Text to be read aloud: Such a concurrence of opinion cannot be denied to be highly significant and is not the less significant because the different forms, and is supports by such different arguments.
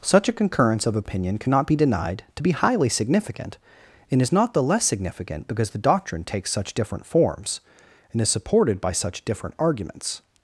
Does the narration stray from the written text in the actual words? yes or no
yes